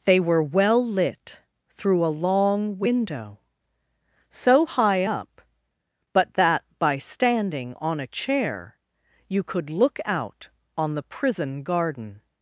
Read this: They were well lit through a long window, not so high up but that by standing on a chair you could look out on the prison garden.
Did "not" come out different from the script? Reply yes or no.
yes